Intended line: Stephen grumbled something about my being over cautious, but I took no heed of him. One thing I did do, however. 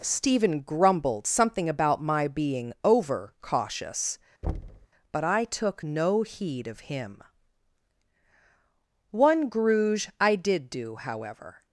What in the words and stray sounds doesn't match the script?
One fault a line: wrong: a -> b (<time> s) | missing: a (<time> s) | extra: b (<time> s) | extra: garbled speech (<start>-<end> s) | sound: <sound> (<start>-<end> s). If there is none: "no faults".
sound: thud (4.4-4.9 s)
wrong: thing -> gruge (9.5 s)